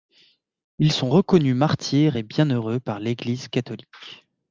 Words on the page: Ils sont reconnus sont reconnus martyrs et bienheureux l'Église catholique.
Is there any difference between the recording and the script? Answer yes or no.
yes